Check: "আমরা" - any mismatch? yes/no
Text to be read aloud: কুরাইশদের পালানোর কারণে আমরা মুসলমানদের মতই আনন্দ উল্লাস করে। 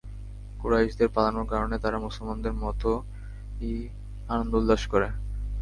yes